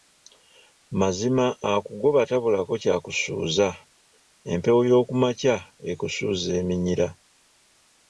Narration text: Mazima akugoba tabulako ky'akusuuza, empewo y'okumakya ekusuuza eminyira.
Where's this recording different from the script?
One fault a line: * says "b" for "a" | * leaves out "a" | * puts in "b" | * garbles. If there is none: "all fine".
all fine